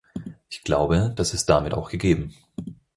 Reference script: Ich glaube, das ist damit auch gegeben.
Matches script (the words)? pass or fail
pass